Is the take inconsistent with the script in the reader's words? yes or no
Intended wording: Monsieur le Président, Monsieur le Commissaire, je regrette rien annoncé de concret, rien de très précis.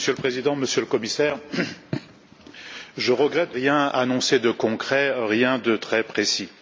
no